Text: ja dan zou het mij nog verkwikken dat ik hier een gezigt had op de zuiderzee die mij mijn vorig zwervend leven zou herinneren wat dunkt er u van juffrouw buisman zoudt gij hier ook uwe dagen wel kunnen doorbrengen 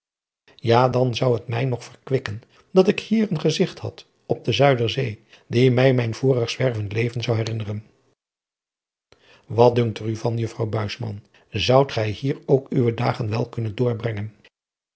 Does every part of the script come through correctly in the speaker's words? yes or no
yes